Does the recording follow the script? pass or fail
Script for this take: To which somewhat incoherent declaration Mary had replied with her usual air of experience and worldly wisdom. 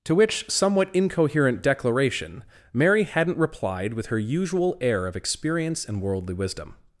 fail